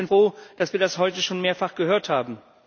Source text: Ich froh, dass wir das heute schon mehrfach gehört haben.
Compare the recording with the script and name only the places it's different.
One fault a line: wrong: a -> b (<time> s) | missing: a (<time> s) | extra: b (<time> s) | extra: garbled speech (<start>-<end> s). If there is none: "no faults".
no faults